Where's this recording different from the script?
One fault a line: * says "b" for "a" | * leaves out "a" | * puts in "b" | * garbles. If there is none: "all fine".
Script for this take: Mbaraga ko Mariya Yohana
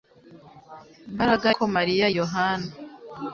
all fine